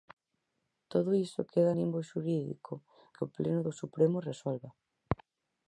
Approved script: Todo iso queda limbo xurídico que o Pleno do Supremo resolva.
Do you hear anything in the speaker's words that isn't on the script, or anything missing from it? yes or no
no